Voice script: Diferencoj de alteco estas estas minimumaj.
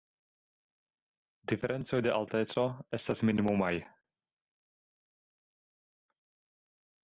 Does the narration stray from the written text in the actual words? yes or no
yes